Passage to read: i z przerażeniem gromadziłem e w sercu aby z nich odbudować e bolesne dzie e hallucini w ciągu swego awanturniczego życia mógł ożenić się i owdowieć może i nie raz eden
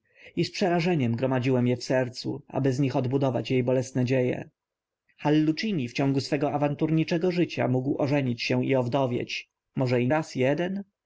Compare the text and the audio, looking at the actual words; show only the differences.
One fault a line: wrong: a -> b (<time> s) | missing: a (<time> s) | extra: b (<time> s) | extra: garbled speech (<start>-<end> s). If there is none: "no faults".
missing: nie (10.1 s)